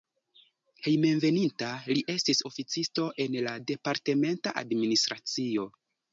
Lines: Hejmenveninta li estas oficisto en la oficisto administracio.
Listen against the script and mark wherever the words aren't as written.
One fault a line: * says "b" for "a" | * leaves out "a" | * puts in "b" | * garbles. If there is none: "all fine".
* says "estis" for "estas"
* says "departementa" for "oficisto"